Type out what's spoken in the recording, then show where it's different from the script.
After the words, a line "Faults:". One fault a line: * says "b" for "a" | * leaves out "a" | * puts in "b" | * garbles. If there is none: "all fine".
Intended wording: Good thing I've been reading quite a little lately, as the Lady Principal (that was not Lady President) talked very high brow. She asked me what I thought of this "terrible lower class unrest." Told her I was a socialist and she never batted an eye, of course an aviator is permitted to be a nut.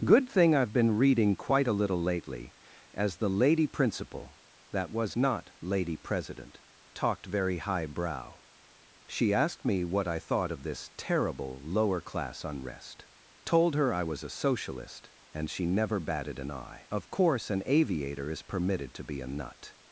Good thing I've been reading quite a little lately, as the Lady Principal (that was not Lady President) talked very high brow. She asked me what I thought of this "terrible lower class unrest." Told her I was a socialist and she never batted an eye, of course an aviator is permitted to be a nut.
Faults:
all fine